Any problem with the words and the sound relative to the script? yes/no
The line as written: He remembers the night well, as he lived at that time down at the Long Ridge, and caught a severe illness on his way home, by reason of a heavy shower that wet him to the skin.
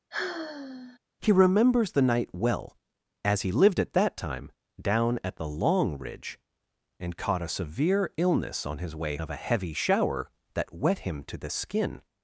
yes